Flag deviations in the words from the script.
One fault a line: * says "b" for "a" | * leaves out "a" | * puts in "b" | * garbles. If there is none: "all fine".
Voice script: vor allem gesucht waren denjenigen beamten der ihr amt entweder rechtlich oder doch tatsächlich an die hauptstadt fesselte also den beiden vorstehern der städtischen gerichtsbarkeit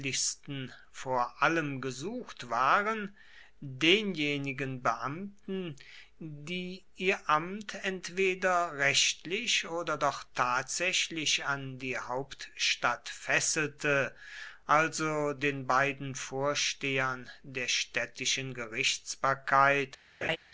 * says "die" for "der"